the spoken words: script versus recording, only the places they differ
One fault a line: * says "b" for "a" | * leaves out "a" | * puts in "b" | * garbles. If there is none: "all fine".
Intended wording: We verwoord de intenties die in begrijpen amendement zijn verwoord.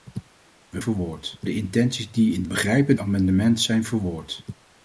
all fine